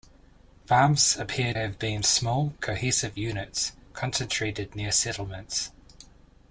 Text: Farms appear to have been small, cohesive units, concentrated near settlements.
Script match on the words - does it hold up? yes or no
no